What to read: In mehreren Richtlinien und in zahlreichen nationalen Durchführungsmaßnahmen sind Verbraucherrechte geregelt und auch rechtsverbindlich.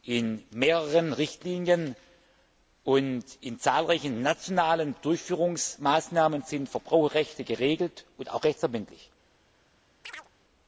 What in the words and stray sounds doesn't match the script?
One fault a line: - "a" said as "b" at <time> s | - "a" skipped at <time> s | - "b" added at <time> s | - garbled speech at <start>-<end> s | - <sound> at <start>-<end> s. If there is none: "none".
- chirp at 10.0-10.3 s